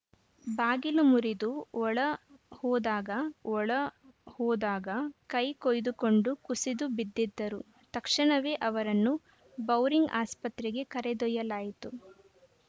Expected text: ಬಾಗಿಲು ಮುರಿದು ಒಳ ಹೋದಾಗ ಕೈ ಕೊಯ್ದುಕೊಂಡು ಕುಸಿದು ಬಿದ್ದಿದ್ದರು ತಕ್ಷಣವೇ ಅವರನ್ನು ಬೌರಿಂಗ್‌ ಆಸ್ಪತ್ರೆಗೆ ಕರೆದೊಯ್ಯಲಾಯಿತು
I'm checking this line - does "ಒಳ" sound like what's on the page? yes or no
yes